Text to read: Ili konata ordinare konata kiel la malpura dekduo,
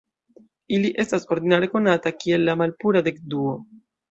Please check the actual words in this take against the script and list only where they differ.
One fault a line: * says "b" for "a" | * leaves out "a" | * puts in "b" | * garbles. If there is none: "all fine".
* says "estas" for "konata"